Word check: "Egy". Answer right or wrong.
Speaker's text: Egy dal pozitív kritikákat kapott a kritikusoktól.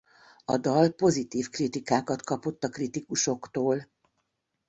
wrong